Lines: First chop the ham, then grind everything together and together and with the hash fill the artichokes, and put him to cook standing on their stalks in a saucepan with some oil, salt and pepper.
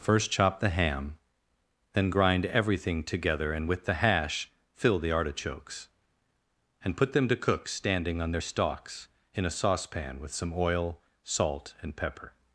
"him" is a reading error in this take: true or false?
true